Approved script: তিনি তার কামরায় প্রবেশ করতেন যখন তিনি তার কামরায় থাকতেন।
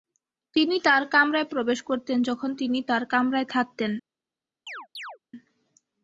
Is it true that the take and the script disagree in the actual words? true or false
false